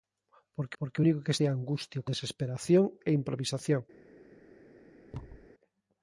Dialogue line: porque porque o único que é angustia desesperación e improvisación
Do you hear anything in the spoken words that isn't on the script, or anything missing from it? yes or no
no